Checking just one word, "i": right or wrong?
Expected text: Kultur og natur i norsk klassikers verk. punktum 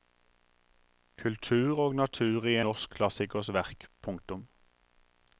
right